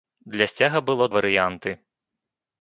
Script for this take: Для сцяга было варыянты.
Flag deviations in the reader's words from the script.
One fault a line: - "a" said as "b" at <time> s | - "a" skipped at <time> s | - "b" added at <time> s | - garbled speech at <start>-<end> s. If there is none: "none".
none